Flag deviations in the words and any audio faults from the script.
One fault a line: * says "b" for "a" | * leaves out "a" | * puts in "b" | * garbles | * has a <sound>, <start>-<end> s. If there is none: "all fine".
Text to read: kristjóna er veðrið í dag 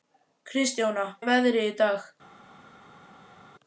all fine